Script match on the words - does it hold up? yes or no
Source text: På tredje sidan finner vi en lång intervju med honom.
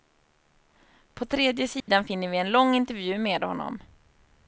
yes